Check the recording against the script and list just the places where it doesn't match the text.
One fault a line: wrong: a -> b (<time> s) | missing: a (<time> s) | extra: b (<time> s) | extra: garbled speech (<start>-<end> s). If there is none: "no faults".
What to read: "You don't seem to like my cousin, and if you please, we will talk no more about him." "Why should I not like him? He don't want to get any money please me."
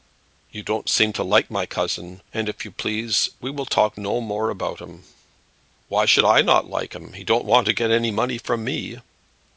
wrong: please -> from (8.4 s)